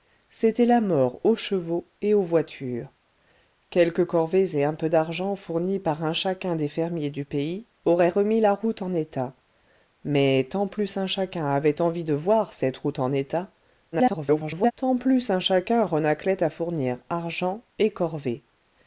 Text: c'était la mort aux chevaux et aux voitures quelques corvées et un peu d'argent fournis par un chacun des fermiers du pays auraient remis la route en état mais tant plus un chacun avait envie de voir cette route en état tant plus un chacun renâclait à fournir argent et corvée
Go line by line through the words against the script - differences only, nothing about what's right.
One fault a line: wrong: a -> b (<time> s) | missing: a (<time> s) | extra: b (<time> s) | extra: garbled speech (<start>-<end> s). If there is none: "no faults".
extra: garbled speech (13.9-14.7 s)